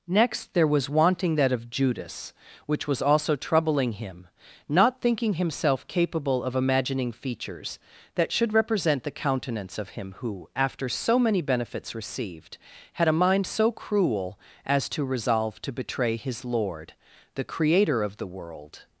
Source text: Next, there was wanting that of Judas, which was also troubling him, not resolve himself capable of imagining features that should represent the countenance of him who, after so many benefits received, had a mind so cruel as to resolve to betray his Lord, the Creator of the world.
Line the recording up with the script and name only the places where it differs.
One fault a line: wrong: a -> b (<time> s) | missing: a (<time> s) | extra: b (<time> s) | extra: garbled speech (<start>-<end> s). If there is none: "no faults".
wrong: resolve -> thinking (5.0 s)